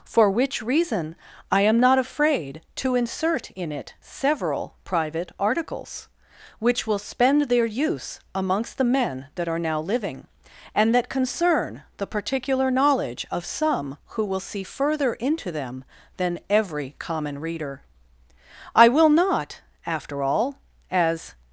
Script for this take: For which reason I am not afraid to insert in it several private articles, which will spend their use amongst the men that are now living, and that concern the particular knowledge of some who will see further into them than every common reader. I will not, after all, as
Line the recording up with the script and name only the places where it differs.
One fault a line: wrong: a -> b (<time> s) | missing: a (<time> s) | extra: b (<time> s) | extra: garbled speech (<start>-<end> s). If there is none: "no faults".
no faults